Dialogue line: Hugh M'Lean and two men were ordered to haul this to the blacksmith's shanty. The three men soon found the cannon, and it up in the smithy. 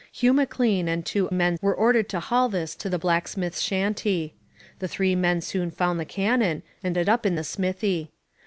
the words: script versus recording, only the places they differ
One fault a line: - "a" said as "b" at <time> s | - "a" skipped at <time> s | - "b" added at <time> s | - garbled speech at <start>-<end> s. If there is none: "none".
none